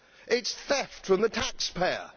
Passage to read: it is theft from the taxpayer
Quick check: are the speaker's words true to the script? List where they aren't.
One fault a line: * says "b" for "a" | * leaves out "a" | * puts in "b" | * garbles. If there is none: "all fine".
all fine